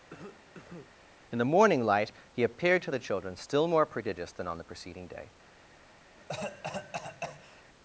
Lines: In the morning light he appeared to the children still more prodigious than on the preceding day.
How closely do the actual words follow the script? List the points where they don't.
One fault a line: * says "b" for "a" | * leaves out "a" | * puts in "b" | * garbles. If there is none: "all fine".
all fine